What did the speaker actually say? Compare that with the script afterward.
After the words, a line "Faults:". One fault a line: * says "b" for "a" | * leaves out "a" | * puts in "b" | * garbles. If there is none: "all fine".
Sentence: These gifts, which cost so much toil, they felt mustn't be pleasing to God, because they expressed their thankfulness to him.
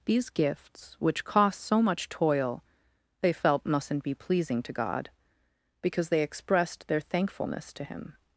These gifts, which cost so much toil, they felt mustn't be pleasing to God, because they expressed their thankfulness to him.
Faults:
all fine